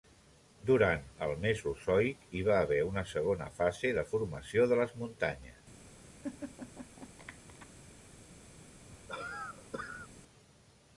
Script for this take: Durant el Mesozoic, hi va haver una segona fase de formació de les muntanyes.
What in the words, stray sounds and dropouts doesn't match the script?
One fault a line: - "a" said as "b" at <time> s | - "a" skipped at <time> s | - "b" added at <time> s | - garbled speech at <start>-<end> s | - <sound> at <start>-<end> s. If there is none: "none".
- laugh at 6.2-7.7 s
- cough at 8.9-10.1 s